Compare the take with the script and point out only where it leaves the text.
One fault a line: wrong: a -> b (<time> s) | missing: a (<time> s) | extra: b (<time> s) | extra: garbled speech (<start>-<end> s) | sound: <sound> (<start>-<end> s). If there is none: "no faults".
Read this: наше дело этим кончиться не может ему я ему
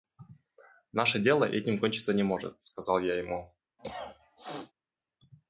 wrong: ему -> сказал (2.6 s)
sound: cough (3.8-4.7 s)